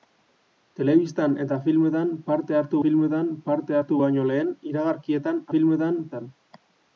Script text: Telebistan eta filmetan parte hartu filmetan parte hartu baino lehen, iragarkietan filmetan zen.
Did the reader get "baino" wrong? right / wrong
right